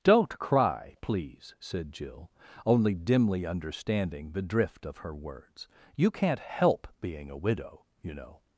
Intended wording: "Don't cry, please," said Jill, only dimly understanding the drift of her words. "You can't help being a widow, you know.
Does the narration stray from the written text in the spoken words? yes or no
no